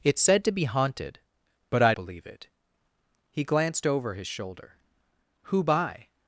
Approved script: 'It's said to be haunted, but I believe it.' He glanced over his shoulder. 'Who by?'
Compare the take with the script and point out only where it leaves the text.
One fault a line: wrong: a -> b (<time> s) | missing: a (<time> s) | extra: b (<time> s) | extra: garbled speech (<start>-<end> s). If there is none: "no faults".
no faults